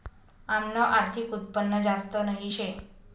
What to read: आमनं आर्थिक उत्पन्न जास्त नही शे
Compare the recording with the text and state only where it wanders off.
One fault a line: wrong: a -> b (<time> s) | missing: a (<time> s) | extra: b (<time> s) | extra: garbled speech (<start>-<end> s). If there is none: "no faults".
no faults